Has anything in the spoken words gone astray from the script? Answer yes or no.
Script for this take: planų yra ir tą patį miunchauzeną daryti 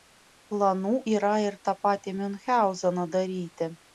no